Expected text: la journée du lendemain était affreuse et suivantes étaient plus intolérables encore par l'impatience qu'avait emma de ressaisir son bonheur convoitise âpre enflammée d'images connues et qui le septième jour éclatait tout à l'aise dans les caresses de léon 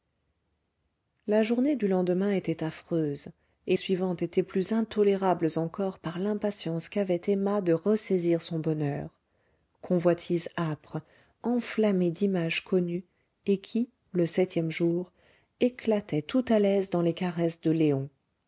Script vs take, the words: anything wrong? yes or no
no